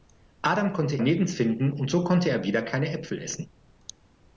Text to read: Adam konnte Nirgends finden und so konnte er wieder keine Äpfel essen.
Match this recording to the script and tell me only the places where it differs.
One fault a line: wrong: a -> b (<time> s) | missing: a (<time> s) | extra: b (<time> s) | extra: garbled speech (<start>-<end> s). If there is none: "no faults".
no faults